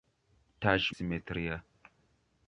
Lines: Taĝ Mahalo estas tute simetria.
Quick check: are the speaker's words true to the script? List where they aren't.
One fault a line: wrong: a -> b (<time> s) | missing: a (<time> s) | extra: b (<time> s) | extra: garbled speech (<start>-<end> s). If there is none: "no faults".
missing: Mahalo estas tute (0.9 s)